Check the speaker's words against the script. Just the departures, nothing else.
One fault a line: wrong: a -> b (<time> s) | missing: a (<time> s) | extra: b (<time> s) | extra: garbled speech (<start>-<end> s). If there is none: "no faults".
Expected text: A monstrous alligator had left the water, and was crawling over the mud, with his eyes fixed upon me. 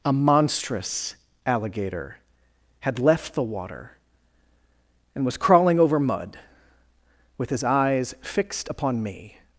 missing: the (6.0 s)